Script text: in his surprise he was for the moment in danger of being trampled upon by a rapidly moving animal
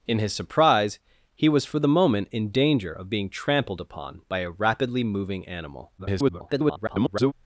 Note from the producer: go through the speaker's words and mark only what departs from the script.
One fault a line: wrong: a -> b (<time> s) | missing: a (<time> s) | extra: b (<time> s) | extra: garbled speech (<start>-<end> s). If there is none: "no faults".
extra: garbled speech (6.0-7.3 s)